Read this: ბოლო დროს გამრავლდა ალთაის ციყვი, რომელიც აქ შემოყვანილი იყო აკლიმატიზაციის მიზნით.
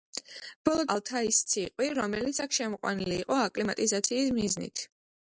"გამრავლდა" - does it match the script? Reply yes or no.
no